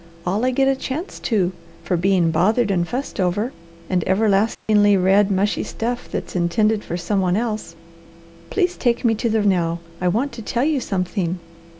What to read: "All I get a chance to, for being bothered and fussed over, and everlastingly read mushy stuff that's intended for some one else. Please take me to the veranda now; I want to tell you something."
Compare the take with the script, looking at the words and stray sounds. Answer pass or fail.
fail